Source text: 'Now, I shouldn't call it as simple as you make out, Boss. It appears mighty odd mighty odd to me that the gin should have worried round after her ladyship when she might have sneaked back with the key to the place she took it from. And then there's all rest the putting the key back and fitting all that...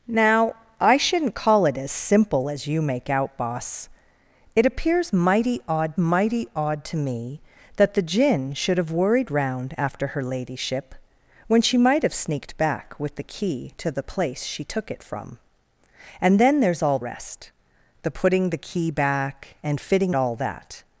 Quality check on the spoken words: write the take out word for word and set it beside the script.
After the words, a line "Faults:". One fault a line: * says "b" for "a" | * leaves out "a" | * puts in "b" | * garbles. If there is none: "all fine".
'Now, I shouldn't call it as simple as you make out, Boss. It appears mighty odd mighty odd to me that the gin should have worried round after her ladyship when she might have sneaked back with the key to the place she took it from. And then there's all rest the putting the key back and fitting all that...
Faults:
all fine